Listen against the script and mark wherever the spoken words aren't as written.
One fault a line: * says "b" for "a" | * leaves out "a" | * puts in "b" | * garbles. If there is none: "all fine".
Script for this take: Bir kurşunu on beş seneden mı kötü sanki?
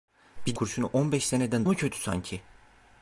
all fine